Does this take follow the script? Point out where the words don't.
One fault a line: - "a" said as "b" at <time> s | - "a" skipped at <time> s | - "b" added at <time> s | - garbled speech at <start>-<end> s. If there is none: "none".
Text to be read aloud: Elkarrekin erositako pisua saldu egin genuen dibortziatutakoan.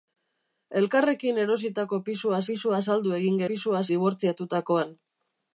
- "pisua" added at 2.5 s
- "genuen" said as "pisua" at 3.5 s